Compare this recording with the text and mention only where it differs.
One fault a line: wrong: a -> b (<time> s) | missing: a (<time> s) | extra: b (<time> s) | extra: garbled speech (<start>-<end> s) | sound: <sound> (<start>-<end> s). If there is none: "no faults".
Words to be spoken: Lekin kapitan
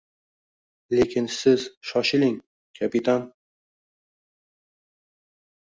extra: siz shoshiling (1.3 s)